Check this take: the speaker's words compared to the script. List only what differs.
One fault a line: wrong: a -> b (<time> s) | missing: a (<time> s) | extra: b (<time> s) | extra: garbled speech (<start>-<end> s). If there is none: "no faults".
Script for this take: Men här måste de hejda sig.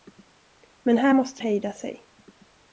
missing: de (1.4 s)